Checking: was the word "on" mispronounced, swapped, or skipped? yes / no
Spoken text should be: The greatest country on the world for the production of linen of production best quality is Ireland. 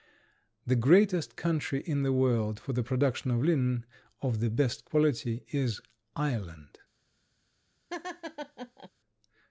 yes